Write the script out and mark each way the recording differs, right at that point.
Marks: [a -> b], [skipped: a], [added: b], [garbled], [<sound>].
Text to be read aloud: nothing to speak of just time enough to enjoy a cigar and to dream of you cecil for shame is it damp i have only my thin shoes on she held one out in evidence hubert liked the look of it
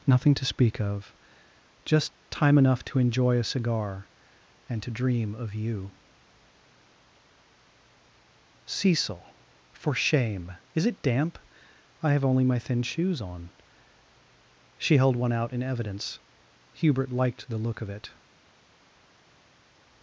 nothing to speak of just time enough to enjoy a cigar and to dream of you cecil for shame is it damp i have only my thin shoes on she held one out in evidence hubert liked the look of it